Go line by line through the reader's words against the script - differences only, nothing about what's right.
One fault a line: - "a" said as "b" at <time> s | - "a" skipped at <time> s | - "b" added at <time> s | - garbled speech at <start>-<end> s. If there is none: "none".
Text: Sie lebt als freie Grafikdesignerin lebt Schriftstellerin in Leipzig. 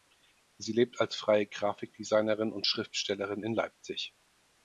- "lebt" said as "und" at 2.5 s